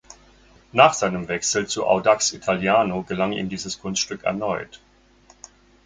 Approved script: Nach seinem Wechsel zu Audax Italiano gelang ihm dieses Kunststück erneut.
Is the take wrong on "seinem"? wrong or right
right